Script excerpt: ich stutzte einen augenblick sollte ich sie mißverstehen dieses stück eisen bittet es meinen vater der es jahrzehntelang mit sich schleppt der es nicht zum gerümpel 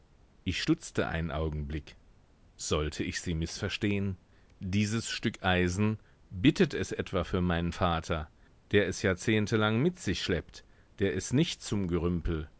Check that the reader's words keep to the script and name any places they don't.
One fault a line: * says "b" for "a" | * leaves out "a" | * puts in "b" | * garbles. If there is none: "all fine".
* puts in "etwa für"